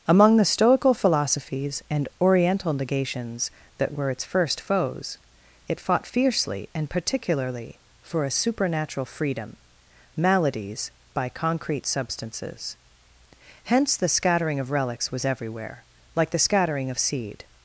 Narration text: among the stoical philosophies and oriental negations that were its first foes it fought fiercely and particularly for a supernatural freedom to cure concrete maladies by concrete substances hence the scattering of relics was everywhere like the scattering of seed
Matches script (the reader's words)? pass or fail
fail